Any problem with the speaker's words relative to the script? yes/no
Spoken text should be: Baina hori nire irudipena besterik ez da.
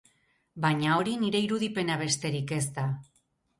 no